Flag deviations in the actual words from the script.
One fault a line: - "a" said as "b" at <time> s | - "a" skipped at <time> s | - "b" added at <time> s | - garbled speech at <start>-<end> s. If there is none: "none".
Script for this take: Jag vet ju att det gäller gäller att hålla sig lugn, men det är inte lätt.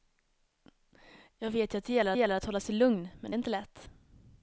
none